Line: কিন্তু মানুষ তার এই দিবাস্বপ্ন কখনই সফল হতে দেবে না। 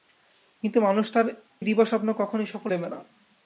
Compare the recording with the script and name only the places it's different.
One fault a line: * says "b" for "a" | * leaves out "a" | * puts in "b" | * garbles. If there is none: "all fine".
* leaves out "এই"
* leaves out "হতে"